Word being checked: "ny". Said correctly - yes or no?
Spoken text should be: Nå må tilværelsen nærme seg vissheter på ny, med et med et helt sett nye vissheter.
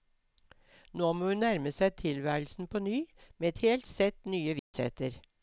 yes